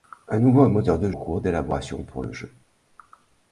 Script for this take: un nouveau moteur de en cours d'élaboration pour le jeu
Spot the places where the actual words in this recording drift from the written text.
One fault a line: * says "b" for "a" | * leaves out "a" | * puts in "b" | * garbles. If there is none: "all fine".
all fine